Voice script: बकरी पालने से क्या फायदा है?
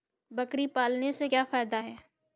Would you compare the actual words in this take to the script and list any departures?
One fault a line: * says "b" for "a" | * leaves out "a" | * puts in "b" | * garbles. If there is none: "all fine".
all fine